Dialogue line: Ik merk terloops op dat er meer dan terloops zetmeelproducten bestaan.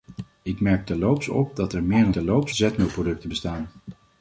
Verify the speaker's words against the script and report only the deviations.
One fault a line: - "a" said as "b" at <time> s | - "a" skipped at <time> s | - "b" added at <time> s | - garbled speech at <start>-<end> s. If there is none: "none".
none